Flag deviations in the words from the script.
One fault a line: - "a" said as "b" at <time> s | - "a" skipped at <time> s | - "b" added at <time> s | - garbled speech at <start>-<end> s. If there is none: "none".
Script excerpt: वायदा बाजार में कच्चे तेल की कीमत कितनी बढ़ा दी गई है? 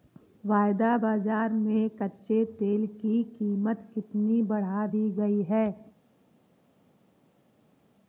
none